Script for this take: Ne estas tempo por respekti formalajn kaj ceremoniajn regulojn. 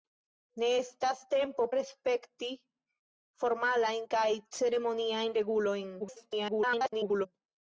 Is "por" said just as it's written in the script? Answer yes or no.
no